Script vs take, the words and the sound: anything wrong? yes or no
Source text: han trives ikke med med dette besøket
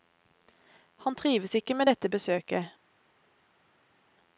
yes